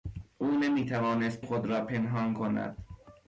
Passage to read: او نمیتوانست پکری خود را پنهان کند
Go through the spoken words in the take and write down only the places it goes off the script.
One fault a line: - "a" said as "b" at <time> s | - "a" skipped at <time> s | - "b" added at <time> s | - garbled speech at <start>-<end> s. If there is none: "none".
- "پکری" skipped at 1.4 s